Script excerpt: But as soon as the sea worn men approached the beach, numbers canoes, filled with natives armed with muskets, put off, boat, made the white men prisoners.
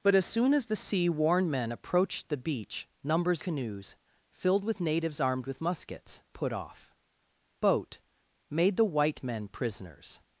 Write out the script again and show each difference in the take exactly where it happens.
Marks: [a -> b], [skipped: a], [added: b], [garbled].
But as soon as the sea worn men approached the beach, numbers canoes, filled with natives armed with muskets, put off, boat, made the white men prisoners.